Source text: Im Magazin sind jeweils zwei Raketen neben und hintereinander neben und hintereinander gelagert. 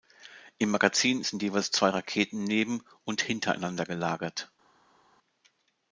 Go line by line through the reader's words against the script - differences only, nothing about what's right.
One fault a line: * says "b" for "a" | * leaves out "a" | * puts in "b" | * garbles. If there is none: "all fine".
* leaves out "neben und hintereinander"